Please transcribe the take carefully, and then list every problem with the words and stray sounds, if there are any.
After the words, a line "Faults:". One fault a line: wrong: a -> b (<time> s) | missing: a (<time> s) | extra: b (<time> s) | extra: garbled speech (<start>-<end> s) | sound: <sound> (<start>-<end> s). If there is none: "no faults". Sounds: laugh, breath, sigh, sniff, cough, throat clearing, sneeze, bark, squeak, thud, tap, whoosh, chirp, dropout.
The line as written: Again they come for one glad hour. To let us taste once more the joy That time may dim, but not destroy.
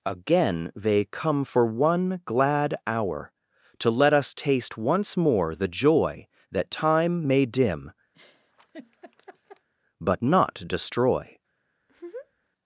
Again they come for one glad hour. To let us taste once more the joy That time may dim, but not destroy.
Faults:
sound: laugh (8.1-9.7 s)
sound: laugh (11.8-12.5 s)